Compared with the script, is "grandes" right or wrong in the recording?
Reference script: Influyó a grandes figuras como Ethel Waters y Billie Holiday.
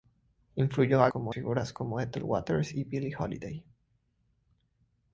wrong